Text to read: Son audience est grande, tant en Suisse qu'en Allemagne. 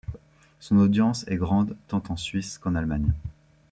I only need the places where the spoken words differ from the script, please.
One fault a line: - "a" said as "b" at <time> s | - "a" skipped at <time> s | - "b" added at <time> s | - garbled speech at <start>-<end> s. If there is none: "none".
none